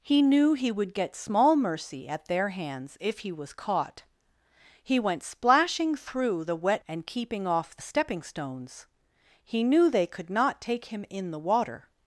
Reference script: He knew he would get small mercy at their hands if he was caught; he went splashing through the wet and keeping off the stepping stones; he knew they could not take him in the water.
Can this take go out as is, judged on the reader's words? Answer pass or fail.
pass